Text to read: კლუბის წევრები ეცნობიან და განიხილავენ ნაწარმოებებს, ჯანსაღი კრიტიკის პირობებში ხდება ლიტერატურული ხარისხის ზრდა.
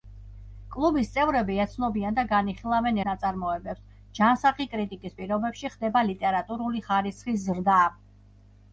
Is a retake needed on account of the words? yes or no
no